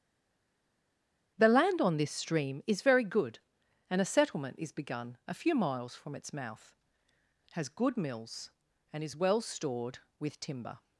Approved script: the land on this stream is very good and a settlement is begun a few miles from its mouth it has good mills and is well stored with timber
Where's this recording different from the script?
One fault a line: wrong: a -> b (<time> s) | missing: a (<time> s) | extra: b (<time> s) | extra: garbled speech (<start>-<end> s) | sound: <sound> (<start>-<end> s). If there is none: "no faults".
missing: it (6.8 s)